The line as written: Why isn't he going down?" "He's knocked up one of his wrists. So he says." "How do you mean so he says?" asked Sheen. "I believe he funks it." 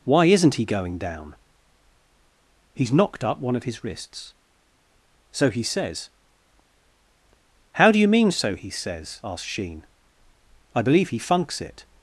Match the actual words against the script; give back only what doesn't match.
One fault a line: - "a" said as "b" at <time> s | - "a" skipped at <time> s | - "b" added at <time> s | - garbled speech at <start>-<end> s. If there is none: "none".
none